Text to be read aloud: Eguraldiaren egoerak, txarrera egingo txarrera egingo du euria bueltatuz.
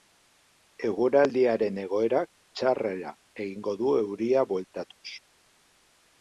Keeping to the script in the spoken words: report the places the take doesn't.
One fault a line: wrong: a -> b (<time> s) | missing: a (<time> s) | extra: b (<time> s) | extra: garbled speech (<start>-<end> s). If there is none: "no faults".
missing: txarrera egingo (3.8 s)